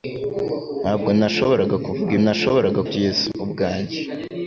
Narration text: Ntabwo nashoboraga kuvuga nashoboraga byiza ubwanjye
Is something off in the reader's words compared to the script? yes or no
no